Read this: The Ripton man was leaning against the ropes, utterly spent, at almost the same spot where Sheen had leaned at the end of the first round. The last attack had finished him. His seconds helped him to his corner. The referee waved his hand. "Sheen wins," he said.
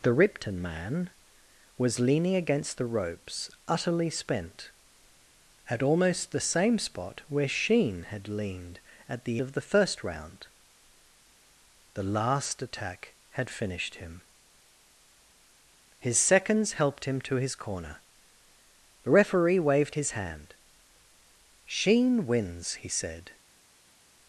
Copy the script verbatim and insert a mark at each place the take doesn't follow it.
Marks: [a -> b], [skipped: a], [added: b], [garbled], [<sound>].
The Ripton man was leaning against the ropes, utterly spent, at almost the same spot where Sheen had leaned at the [skipped: end] of the first round. The last attack had finished him. His seconds helped him to his corner. The referee waved his hand. "Sheen wins," he said.